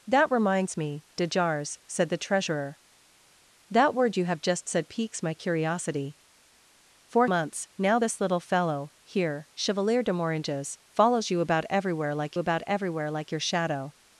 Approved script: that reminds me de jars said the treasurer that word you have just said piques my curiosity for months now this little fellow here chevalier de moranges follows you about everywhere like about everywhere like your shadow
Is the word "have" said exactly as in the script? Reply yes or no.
yes